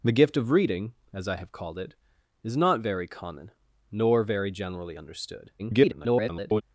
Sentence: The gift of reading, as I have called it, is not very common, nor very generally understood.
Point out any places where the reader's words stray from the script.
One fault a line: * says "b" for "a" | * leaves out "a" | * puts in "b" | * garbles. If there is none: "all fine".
* garbles